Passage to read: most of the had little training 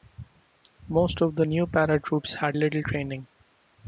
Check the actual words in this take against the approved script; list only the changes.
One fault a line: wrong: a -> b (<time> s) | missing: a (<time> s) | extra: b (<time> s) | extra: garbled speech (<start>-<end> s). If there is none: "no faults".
extra: new paratroops (1.4 s)